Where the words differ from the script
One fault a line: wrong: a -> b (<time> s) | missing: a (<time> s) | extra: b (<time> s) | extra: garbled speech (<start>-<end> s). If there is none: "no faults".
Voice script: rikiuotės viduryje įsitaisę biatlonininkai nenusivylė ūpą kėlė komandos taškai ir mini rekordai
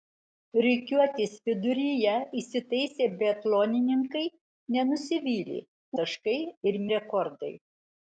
missing: ūpą kėlė komandos (5.6 s)
missing: mini (6.8 s)